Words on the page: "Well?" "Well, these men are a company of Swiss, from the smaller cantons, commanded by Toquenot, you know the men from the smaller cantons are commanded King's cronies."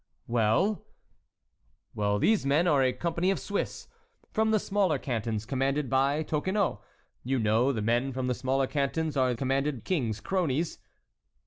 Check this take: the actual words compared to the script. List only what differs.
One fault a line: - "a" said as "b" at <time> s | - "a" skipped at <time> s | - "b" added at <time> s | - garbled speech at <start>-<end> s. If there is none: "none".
none